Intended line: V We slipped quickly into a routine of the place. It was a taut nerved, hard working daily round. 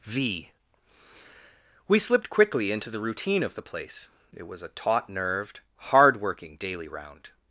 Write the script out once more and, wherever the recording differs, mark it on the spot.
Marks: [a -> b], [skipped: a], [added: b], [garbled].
V We slipped quickly into [a -> the] routine of the place. It was a taut nerved, hard working daily round.